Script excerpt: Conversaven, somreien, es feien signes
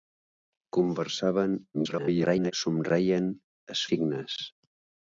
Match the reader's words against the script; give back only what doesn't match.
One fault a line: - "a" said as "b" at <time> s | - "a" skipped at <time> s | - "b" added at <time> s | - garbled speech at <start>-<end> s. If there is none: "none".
- garbled speech at 1.7-2.5 s
- "feien" skipped at 3.8 s